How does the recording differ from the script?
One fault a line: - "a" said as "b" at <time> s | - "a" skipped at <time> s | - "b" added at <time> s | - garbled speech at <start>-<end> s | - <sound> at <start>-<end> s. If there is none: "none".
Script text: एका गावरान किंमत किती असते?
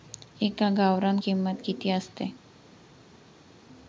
none